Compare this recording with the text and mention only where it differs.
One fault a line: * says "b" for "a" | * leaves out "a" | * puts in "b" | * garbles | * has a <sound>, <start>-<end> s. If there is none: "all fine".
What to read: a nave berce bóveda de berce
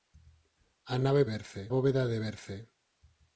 all fine